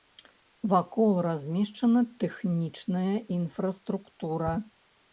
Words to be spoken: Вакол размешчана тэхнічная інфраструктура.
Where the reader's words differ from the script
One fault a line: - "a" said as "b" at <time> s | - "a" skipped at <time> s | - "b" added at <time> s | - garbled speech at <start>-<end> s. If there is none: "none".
none